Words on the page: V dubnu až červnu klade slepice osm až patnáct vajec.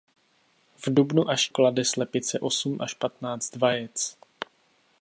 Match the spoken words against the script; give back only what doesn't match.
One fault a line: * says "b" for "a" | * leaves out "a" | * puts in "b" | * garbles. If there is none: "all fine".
* leaves out "červnu"